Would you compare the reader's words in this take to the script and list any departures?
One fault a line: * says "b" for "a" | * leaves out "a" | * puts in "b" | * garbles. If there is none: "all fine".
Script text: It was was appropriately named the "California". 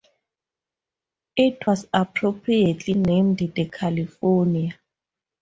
* leaves out "was"